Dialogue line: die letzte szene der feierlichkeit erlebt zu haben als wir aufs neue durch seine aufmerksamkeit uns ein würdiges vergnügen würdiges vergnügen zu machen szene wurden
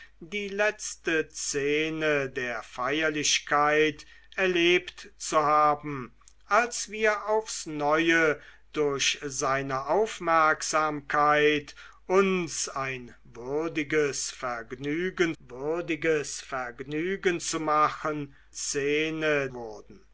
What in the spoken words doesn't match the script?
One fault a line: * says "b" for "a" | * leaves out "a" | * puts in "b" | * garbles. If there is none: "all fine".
all fine